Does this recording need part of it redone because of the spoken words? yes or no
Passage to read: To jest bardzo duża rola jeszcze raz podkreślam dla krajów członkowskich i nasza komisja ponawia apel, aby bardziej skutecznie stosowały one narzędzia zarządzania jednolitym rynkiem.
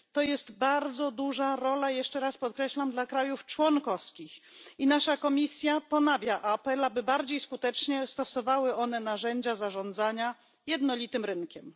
no